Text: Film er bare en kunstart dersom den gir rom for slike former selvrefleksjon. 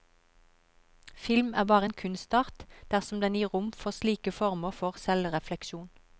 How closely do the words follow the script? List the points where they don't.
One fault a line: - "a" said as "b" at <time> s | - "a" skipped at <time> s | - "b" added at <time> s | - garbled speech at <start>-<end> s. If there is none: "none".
- "for" added at 4.8 s